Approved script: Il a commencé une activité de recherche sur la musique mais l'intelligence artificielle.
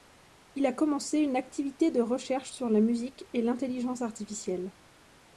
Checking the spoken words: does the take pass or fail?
fail